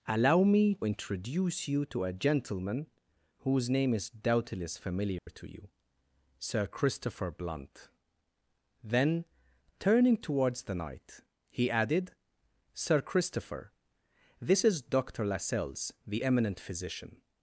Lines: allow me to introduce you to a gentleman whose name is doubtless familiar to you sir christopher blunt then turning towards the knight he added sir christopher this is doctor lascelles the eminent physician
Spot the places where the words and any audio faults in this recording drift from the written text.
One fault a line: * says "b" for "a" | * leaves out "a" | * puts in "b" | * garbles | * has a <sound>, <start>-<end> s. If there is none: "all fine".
* leaves out "to"
* has a dropout, 5.2-5.3 s